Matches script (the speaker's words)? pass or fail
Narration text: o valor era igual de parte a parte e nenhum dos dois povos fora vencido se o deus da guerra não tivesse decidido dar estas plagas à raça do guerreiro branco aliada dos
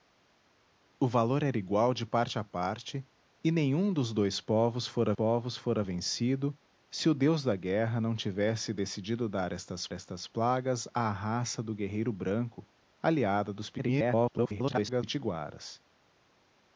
fail